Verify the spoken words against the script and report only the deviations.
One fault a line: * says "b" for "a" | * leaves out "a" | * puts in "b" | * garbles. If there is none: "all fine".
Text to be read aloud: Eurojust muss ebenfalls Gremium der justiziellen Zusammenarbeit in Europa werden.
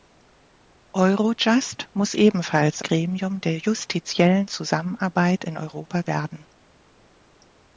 all fine